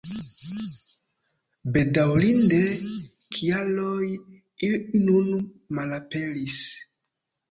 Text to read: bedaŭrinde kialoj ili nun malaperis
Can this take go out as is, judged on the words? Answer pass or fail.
pass